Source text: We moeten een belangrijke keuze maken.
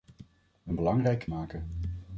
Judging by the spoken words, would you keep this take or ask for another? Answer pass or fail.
fail